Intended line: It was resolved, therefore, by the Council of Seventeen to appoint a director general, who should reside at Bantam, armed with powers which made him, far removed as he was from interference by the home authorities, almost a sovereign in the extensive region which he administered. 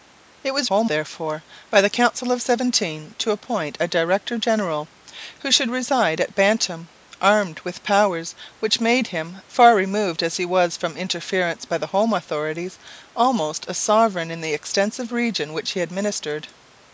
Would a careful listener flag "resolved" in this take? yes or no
yes